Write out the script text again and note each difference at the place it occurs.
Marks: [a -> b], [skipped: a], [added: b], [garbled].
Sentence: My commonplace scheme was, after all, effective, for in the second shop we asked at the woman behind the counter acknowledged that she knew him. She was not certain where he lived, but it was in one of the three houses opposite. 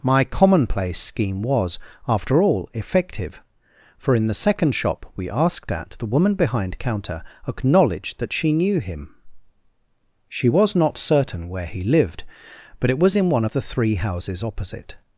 My commonplace scheme was, after all, effective, for in the second shop we asked at the woman behind [skipped: the] counter acknowledged that she knew him. She was not certain where he lived, but it was in one of the three houses opposite.